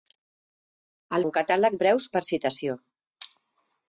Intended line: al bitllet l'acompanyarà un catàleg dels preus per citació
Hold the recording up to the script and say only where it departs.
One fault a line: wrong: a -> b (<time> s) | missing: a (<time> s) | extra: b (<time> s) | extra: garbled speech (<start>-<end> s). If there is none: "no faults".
missing: bitllet l'acompanyarà (1.2 s)
missing: dels (1.8 s)